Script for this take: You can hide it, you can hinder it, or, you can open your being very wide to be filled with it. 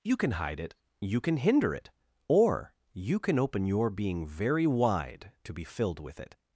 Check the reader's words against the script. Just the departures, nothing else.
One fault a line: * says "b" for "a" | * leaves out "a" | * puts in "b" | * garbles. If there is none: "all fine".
all fine